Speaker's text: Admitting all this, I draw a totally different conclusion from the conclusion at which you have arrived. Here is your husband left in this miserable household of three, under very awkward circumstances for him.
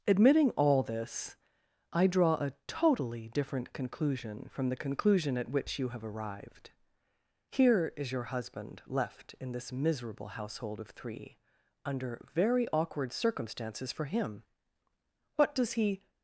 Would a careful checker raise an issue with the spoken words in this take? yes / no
yes